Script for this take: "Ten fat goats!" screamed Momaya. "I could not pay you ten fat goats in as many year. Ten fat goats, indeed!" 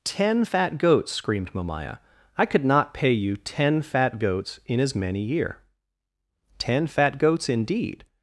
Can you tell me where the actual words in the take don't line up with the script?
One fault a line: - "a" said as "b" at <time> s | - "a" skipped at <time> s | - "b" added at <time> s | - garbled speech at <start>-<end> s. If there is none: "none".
none